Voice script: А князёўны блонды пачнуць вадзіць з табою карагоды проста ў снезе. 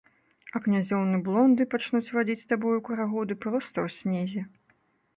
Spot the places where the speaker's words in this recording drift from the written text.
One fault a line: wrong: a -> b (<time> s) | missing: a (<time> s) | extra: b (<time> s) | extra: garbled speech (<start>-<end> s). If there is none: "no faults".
no faults